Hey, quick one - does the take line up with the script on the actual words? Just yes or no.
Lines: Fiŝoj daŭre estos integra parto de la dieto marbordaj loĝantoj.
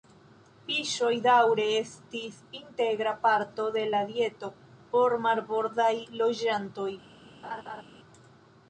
no